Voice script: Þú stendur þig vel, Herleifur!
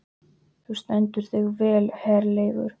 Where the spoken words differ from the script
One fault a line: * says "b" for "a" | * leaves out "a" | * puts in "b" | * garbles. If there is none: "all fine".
all fine